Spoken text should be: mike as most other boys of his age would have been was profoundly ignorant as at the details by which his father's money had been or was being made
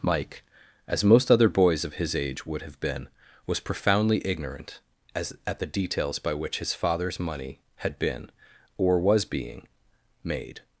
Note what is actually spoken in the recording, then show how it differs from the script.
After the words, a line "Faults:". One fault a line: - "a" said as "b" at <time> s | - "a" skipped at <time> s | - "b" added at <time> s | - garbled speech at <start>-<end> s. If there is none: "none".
mike as most other boys of his age would have been was profoundly ignorant as at the details by which his father's money had been or was being made
Faults:
none